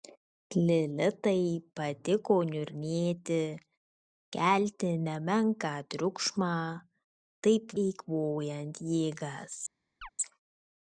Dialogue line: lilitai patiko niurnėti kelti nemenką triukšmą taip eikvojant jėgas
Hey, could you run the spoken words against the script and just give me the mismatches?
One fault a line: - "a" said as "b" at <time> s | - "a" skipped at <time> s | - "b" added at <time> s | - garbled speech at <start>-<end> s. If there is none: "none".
none